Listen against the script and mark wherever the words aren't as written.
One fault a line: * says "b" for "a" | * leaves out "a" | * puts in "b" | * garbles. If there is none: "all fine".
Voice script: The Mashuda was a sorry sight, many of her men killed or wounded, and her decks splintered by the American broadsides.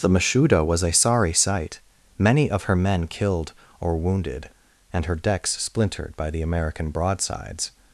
all fine